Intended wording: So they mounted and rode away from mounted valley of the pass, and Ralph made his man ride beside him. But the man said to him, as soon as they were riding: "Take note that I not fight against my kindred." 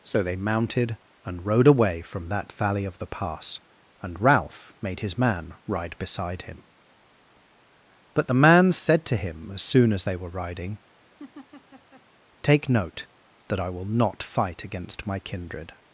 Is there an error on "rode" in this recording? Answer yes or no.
no